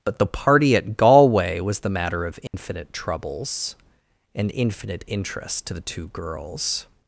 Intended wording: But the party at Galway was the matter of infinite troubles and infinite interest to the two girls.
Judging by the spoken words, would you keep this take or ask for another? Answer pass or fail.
pass